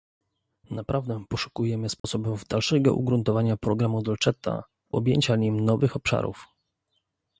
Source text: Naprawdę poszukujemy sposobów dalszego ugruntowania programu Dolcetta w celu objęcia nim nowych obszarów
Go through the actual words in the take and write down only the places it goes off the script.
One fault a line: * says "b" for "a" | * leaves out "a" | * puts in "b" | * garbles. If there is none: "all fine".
* leaves out "w celu"